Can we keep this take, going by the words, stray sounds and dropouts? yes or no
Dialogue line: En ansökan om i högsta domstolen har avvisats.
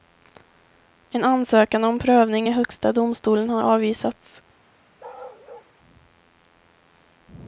no